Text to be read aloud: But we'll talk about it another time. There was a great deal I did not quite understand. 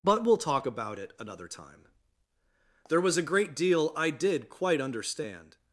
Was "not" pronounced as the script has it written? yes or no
no